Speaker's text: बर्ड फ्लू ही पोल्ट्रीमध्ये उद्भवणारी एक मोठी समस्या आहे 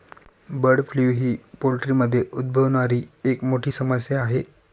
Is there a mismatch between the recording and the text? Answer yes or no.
no